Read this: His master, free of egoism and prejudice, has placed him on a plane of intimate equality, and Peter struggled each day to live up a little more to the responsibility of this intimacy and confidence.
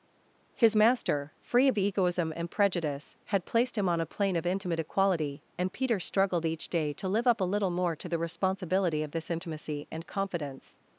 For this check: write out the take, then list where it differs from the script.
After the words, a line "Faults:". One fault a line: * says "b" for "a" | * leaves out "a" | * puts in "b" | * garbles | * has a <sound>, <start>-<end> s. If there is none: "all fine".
His master, free of egoism and prejudice, had placed him on a plane of intimate equality, and Peter struggled each day to live up a little more to the responsibility of this intimacy and confidence.
Faults:
* says "had" for "has"